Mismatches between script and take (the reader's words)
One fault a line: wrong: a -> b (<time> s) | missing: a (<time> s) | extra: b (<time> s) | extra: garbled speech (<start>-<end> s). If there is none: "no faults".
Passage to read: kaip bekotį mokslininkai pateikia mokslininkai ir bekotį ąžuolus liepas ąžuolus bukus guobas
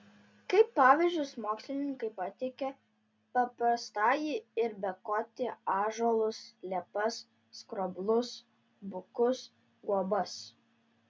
wrong: bekotį -> pavyzdžius (0.8 s)
wrong: mokslininkai -> paprastąjį (3.4 s)
wrong: ąžuolus -> skroblus (7.6 s)